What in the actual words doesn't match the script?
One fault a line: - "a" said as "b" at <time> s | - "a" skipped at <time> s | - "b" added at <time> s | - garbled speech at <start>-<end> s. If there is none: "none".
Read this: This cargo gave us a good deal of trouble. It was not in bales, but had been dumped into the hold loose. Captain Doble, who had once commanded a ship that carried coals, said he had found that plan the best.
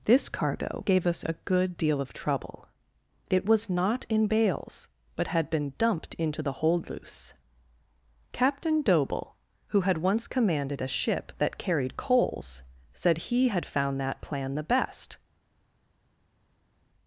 none